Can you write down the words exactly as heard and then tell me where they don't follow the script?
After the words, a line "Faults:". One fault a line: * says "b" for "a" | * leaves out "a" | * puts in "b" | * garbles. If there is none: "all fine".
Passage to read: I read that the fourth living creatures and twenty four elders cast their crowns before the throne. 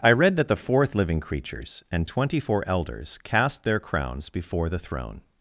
I read that the fourth living creatures and twenty four elders cast their crowns before the throne.
Faults:
all fine